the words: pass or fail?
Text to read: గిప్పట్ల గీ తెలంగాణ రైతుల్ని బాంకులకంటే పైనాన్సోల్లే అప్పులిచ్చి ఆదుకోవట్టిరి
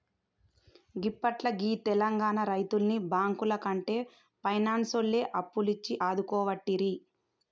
pass